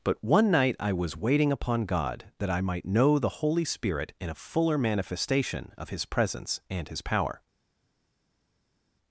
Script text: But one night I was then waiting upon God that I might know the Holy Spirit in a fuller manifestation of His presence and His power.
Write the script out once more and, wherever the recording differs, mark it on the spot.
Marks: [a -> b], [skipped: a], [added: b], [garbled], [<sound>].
But one night I was [skipped: then] waiting upon God that I might know the Holy Spirit in a fuller manifestation of His presence and His power.